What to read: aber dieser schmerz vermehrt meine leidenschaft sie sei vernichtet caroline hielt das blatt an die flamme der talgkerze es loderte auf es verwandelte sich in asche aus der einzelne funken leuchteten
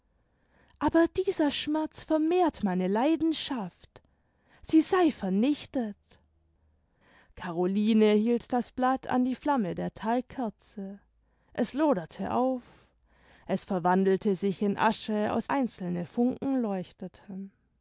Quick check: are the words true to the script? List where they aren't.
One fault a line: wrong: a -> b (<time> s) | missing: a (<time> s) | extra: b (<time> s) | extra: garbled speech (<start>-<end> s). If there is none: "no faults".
missing: der (15.5 s)